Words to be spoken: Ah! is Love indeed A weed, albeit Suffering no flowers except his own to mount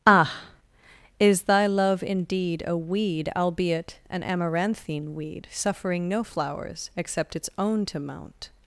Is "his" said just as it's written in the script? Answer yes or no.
no